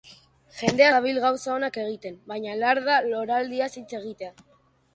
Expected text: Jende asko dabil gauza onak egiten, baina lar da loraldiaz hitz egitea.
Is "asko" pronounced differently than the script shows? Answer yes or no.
yes